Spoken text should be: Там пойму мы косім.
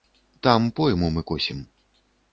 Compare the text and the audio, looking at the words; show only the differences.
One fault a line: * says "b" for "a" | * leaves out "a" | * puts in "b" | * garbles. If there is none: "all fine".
all fine